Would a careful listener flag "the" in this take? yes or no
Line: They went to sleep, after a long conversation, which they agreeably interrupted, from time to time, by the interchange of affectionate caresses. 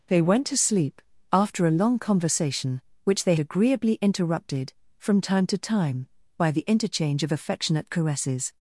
no